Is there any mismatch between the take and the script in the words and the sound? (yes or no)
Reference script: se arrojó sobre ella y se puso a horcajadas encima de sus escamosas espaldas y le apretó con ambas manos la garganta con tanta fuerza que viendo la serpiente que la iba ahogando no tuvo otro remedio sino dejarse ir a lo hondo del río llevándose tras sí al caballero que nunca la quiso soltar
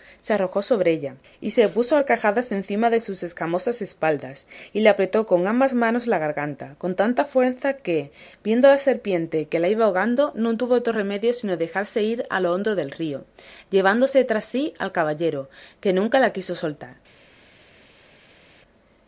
no